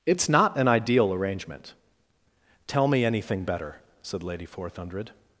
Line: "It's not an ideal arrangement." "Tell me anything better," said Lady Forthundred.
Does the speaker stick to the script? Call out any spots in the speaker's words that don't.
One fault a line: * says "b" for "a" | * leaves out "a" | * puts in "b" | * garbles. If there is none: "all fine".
all fine